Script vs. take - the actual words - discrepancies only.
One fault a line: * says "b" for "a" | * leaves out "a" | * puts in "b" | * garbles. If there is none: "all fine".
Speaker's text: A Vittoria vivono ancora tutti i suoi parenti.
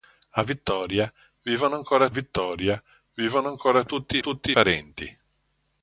* puts in "Vittoria vivono ancora"
* says "tutti" for "suoi"